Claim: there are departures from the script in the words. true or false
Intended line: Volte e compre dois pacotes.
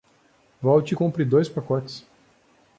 false